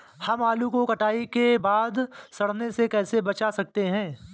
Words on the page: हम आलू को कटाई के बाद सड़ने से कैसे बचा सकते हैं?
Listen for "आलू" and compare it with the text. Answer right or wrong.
right